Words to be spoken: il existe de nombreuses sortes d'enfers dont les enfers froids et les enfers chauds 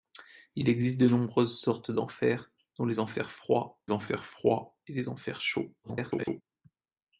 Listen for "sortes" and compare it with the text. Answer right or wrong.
right